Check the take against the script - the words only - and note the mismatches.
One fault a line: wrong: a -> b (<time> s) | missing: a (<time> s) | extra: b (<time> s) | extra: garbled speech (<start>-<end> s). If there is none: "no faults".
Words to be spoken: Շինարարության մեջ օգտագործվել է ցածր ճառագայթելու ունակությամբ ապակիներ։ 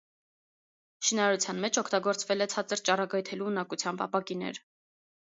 no faults